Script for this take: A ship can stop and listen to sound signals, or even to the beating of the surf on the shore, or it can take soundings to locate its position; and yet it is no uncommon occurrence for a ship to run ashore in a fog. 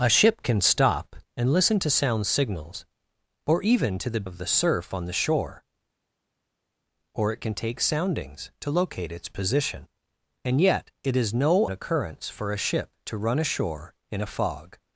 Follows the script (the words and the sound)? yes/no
no